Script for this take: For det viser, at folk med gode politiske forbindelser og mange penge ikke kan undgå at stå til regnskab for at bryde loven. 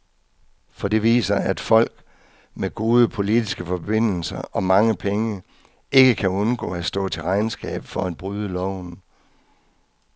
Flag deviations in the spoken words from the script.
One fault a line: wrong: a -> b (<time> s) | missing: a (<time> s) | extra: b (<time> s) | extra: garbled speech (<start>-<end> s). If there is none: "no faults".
no faults